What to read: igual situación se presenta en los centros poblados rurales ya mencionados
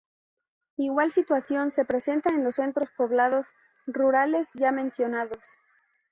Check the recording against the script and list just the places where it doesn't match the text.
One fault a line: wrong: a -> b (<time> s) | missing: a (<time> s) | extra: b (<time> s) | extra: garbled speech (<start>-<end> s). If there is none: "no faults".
no faults